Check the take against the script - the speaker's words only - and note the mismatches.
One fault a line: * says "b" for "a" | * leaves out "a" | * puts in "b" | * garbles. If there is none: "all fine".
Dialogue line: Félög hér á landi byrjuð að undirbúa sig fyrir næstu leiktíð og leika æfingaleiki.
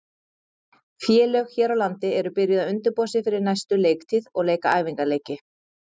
* puts in "eru"